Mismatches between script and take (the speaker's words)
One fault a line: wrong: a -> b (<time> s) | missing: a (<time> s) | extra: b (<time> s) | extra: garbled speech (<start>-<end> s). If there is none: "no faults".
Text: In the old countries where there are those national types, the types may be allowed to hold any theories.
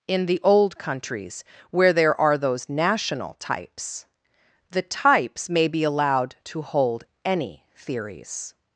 no faults